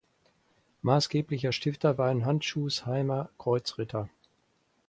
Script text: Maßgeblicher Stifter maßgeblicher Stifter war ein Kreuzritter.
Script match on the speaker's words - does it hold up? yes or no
no